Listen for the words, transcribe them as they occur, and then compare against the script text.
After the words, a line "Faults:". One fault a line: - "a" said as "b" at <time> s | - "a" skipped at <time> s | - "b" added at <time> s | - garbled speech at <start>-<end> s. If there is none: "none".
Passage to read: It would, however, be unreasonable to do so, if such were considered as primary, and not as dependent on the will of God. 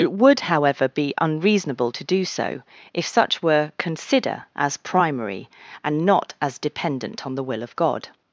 It would, however, be unreasonable to do so, if such were consider as primary, and not as dependent on the will of God.
Faults:
- "considered" said as "consider" at 3.8 s